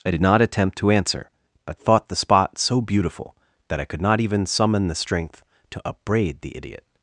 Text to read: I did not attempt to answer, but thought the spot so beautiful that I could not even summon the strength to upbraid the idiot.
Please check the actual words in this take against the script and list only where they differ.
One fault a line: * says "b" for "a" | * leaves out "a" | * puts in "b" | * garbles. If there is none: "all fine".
all fine